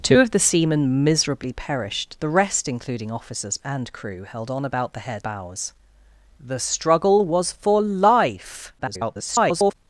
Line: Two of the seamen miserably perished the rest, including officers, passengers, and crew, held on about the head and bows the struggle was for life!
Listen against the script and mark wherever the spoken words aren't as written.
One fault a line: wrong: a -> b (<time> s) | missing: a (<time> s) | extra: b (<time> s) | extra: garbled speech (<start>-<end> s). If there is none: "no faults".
missing: passengers (3.6 s)
missing: and (5.3 s)
extra: garbled speech (8.8-9.7 s)